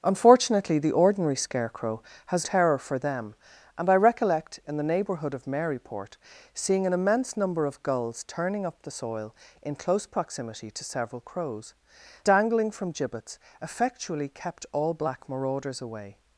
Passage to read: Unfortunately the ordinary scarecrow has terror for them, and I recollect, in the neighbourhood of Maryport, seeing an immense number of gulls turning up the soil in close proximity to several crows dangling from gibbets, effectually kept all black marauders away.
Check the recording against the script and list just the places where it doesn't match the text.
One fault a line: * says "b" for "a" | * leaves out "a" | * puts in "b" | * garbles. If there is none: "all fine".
all fine